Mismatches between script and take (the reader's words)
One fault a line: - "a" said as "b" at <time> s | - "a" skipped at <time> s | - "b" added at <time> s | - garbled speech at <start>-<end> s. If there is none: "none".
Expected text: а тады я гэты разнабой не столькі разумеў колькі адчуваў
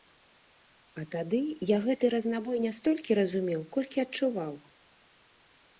none